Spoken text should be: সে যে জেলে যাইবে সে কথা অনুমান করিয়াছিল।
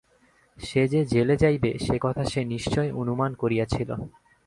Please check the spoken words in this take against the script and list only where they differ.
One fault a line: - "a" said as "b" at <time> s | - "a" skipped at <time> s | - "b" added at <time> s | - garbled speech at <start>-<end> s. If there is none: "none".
- "সে নিশ্চয়" added at 2.2 s